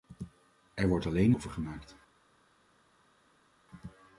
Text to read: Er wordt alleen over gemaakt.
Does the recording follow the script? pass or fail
pass